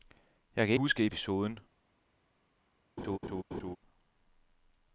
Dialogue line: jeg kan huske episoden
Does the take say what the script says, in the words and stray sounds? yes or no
no